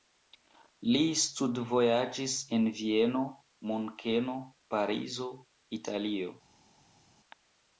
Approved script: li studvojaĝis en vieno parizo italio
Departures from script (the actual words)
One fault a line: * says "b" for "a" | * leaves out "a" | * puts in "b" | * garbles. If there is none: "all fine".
* puts in "munkeno"